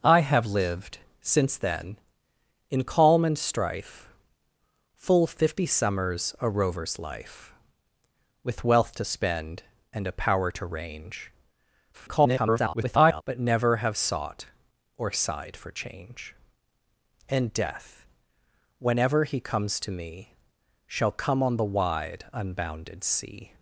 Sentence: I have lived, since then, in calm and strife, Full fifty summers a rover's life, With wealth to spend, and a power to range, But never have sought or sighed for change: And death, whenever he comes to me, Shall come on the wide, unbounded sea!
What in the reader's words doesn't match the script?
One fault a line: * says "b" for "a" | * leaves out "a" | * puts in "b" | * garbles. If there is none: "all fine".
* garbles